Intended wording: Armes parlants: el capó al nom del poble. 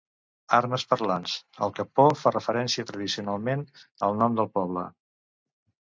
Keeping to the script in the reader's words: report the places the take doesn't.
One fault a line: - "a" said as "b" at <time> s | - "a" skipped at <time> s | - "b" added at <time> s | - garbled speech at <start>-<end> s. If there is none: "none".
- "fa referència tradicionalment" added at 2.2 s